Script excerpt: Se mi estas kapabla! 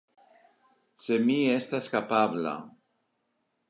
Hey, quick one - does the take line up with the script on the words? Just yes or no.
yes